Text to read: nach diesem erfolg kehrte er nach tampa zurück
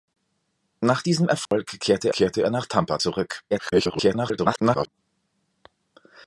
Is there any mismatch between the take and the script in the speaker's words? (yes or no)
yes